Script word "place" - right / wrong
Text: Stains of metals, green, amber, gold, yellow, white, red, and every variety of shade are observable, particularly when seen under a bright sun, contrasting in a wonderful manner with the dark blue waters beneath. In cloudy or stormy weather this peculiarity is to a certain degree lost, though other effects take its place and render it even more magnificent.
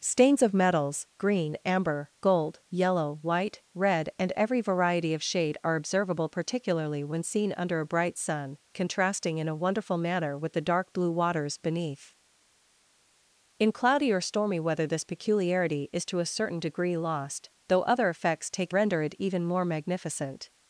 wrong